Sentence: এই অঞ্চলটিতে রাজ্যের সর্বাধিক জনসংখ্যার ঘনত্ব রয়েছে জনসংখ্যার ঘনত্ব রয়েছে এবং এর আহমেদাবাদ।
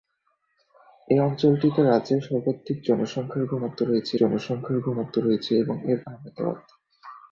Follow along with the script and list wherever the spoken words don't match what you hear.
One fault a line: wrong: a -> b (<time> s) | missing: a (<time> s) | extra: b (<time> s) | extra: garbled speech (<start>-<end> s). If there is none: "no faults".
no faults